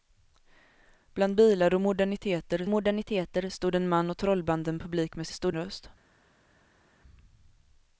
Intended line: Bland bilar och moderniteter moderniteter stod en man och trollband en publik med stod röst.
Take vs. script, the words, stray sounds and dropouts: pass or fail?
pass